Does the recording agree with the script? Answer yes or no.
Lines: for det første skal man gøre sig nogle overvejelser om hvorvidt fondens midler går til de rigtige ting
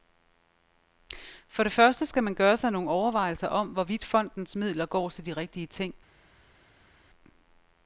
yes